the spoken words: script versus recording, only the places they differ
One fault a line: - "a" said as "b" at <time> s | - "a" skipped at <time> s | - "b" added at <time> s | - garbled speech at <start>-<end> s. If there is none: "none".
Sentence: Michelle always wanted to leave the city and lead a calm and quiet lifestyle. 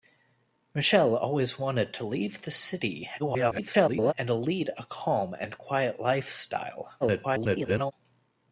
- garbled speech at 3.2-4.1 s
- garbled speech at 7.0-7.9 s